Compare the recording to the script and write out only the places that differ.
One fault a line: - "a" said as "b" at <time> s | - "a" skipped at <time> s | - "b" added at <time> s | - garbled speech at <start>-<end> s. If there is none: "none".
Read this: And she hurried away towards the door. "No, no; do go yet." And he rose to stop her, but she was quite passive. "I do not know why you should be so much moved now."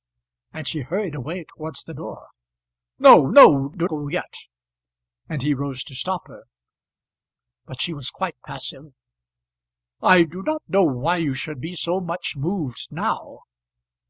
none